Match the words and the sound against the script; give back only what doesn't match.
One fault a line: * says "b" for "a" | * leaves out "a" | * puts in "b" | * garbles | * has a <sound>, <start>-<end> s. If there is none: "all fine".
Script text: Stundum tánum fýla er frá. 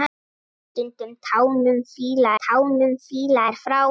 * puts in "tánum fýla"